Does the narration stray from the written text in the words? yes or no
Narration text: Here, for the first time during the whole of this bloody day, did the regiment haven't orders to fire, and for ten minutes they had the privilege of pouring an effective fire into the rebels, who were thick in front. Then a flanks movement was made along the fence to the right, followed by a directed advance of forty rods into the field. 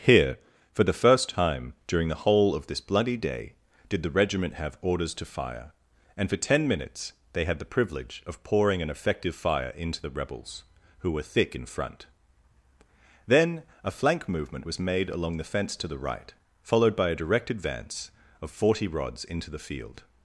yes